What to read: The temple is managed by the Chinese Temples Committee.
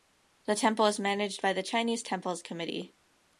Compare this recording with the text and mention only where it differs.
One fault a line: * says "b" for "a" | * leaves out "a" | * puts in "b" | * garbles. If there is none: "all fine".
all fine